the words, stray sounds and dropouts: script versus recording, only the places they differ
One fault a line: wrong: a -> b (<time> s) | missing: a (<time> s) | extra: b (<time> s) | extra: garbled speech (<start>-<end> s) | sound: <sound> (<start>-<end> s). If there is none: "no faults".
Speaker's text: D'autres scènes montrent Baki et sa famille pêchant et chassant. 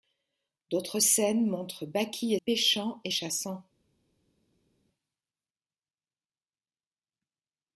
missing: sa famille (2.4 s)